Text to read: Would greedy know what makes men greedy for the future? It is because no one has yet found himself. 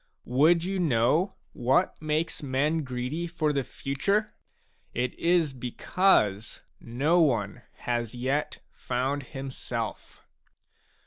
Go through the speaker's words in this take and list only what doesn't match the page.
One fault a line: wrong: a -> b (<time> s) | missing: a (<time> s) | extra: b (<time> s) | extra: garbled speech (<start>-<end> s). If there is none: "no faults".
wrong: greedy -> you (0.6 s)